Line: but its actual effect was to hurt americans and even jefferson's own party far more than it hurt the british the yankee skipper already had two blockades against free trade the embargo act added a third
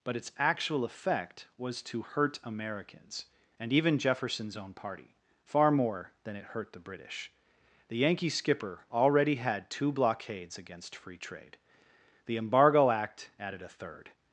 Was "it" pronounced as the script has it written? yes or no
yes